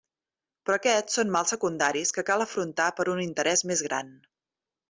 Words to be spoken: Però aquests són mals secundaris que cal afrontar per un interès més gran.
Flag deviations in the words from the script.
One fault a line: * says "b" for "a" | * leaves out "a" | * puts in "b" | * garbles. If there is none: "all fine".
all fine